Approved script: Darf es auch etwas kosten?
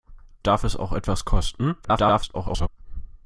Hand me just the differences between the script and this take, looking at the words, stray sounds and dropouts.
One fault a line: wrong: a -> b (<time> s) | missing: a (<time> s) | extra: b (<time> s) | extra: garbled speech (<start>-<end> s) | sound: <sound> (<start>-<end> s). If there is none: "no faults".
extra: garbled speech (1.8-2.7 s)